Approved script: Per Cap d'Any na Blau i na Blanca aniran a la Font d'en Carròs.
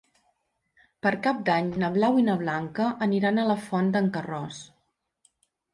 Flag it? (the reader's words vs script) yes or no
no